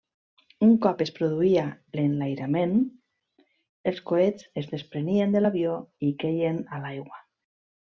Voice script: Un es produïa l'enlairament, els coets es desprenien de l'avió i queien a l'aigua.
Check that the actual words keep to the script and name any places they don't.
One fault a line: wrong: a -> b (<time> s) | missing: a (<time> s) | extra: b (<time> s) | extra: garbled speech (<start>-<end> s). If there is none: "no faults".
extra: cop (0.8 s)